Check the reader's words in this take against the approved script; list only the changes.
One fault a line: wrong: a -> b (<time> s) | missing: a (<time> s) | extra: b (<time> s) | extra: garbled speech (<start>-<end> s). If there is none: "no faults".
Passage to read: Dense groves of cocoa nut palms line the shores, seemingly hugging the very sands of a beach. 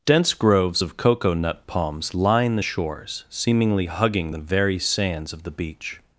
wrong: a -> the (5.4 s)